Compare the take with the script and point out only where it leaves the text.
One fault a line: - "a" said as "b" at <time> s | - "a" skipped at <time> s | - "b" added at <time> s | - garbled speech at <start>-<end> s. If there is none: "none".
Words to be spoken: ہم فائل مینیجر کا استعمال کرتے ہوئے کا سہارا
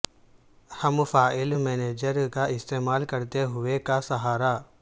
none